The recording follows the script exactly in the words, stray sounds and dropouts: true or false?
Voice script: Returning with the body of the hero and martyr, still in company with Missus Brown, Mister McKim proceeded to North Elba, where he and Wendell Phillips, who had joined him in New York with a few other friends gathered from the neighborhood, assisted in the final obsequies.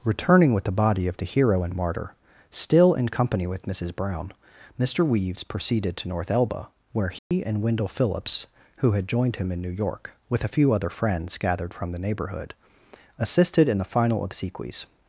false